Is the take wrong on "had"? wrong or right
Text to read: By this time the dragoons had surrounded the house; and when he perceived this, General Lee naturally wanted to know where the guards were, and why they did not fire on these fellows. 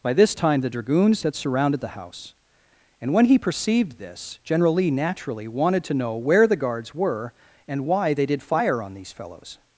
right